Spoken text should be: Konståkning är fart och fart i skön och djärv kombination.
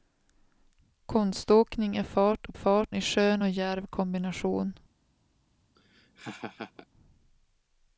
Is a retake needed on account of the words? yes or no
no